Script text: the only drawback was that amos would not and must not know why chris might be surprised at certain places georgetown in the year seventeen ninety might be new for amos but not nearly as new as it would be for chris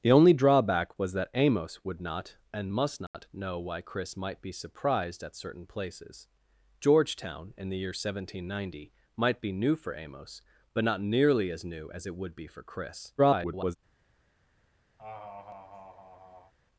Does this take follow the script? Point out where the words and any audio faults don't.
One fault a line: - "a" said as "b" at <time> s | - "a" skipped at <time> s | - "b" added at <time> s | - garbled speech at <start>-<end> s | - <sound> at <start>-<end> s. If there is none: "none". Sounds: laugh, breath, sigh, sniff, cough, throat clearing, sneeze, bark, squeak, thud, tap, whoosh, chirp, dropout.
- dropout at 3.1-3.1 s
- garbled speech at 13.2-13.8 s
- laugh at 15.0-16.5 s